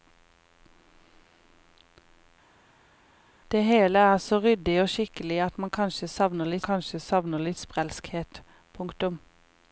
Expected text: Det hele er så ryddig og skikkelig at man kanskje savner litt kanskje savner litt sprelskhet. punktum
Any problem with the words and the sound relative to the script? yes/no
no